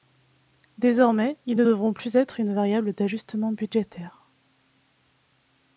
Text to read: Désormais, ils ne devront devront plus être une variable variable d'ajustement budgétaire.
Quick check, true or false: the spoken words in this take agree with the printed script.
false